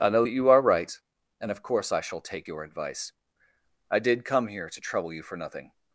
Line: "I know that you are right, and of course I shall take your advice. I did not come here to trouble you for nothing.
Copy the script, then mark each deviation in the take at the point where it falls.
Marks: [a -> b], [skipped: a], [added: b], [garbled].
"I know that you are right, and of course I shall take your advice. I did [skipped: not] come here to trouble you for nothing.